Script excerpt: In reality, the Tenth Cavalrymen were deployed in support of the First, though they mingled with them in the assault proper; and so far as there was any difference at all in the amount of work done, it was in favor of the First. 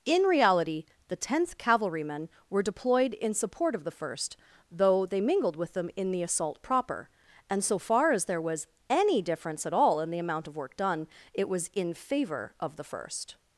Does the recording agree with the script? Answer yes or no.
yes